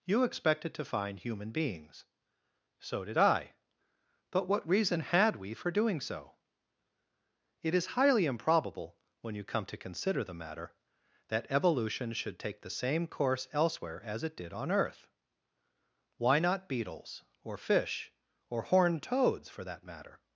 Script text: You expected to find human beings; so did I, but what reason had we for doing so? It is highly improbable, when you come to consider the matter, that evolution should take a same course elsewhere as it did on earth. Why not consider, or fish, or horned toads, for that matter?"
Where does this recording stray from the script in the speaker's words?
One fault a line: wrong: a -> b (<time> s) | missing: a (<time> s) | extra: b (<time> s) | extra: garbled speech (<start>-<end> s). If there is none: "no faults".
wrong: a -> the (12.6 s)
wrong: consider -> beetles (16.7 s)